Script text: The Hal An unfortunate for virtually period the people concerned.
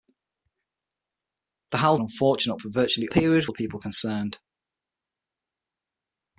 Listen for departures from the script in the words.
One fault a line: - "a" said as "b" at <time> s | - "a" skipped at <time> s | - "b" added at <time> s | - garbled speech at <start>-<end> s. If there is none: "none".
none